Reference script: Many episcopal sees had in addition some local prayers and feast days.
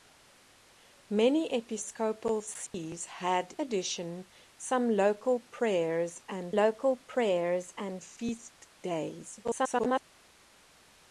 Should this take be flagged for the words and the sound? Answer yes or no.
yes